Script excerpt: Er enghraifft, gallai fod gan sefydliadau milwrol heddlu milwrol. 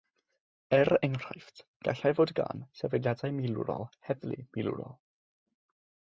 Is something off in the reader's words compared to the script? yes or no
no